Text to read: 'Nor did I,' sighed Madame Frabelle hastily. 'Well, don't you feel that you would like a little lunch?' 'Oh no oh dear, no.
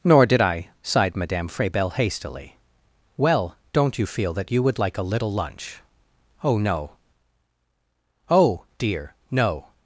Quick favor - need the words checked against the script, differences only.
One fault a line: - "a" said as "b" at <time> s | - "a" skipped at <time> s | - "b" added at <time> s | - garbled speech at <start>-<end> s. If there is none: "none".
none